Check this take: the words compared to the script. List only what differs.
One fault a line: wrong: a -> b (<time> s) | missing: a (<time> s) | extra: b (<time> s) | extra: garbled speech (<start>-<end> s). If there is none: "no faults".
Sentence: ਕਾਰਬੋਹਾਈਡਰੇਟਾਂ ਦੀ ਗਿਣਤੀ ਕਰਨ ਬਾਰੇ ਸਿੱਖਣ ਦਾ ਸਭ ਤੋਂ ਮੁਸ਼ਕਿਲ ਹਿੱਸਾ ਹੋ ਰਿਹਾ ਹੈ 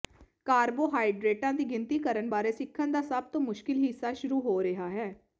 extra: ਸ਼ੁਰੂ (4.1 s)